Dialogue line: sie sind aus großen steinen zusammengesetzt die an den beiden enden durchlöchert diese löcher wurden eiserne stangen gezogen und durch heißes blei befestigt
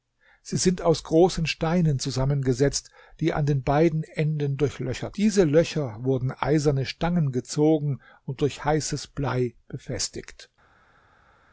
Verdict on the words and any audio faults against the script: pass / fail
pass